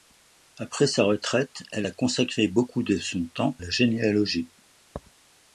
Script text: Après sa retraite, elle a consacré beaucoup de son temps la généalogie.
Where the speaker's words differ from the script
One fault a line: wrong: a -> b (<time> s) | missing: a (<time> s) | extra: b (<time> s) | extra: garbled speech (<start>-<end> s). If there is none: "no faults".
no faults